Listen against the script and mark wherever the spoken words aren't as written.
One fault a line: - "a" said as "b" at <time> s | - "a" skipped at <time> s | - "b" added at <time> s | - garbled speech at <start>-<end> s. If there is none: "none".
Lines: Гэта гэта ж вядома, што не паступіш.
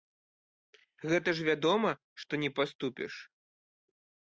- "гэта" skipped at 1.3 s